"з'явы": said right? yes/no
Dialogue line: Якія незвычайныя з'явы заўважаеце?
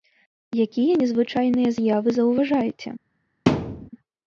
yes